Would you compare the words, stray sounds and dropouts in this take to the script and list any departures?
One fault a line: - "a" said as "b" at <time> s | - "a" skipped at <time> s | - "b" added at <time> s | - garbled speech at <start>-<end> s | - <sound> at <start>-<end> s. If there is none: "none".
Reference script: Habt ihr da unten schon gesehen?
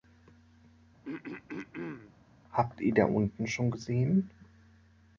- throat clearing at 1.0-2.1 s